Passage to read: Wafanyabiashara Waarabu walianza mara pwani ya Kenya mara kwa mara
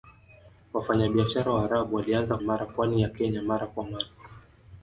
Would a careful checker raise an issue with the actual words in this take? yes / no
no